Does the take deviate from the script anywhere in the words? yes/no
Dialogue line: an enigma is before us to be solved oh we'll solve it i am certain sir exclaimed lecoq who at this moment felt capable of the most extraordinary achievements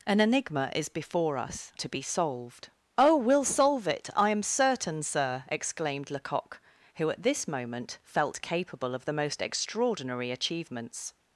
no